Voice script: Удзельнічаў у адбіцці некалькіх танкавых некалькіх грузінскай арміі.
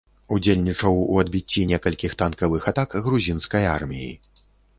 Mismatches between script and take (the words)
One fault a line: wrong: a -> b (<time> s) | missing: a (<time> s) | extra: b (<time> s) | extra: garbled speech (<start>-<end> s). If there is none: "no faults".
wrong: некалькіх -> атак (2.7 s)